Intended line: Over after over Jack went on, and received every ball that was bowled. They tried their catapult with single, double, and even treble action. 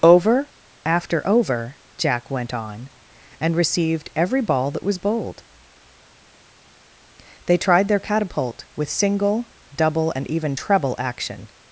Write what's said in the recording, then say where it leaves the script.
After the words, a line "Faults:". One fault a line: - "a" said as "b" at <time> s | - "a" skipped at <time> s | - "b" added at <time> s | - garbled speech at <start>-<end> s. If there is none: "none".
Over after over Jack went on, and received every ball that was bowled. They tried their catapult with single, double, and even treble action.
Faults:
none